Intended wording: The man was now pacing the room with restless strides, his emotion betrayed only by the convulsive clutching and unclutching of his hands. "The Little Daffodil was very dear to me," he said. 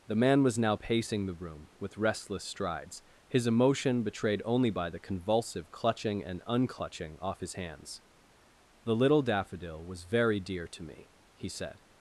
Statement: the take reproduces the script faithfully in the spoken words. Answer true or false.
false